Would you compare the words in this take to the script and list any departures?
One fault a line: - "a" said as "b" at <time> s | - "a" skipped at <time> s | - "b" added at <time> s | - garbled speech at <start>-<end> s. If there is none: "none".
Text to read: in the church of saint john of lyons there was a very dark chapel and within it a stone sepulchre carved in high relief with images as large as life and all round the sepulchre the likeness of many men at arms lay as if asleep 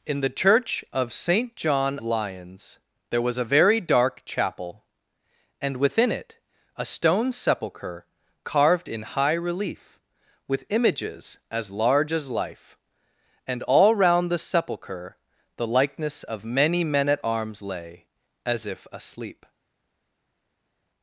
- "of" skipped at 2.0 s